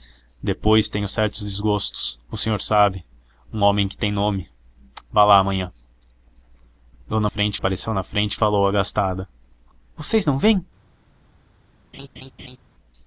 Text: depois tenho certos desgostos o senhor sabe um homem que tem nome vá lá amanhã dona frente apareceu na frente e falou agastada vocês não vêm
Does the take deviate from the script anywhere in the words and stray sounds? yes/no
yes